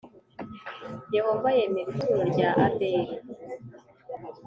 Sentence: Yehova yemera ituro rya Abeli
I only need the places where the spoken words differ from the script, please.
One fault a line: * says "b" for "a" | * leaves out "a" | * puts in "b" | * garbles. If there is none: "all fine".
all fine